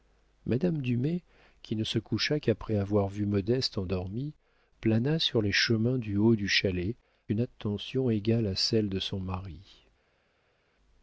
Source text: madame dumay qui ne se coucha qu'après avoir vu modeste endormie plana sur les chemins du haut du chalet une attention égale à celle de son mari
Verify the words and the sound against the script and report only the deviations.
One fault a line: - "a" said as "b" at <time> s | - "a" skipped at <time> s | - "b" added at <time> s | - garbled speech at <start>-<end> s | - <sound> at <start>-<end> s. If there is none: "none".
none